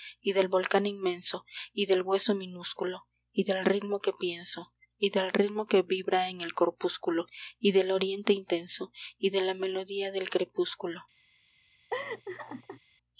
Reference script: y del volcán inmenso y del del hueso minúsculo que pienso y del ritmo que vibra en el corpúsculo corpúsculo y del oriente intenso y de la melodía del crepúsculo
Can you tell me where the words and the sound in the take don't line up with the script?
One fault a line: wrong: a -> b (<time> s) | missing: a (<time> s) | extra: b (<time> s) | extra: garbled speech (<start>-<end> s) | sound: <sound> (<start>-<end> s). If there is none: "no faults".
missing: del (2.0 s)
extra: y del ritmo (3.3 s)
missing: corpúsculo (7.3 s)
sound: laugh (11.9-12.8 s)